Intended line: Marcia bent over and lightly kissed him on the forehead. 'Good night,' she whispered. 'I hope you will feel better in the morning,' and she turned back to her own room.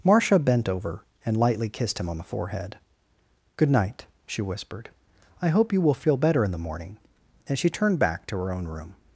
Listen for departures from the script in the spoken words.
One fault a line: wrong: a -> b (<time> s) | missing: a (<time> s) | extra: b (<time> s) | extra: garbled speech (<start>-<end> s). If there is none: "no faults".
no faults